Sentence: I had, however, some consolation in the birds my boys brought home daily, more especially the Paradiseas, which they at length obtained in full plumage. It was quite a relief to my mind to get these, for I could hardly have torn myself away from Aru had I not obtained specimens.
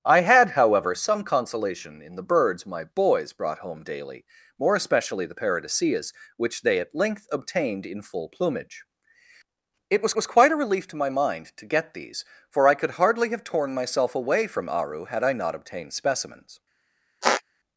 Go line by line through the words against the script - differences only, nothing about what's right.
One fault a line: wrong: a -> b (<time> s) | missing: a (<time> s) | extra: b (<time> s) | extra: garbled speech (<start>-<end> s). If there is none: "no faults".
extra: was (10.1 s)